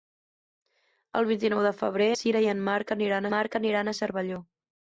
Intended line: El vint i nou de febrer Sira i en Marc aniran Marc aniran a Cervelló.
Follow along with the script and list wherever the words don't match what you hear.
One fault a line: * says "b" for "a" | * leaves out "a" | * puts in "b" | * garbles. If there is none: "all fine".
all fine